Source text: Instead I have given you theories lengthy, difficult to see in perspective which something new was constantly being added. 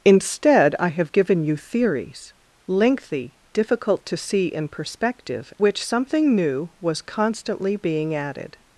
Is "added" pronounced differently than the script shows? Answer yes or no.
no